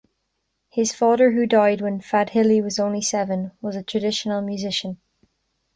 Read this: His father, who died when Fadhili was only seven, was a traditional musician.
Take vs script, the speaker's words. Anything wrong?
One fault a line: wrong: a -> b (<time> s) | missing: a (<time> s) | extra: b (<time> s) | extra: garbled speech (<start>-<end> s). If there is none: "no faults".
no faults